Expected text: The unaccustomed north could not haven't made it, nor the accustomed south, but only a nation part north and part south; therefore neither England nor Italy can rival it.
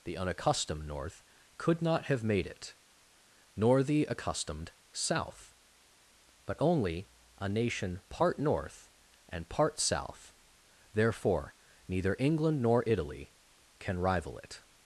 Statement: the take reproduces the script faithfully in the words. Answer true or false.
false